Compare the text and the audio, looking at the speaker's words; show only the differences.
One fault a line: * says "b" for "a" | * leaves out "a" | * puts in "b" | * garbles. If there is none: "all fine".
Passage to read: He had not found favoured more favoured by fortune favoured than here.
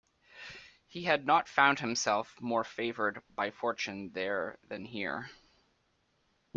* says "himself" for "favoured"
* says "there" for "favoured"